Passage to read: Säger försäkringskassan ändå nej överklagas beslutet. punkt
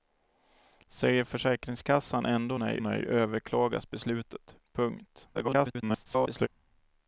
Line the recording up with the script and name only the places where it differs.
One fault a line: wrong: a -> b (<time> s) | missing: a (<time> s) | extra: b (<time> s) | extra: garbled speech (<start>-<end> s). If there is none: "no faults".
extra: nej (2.8 s)
extra: garbled speech (5.3-6.5 s)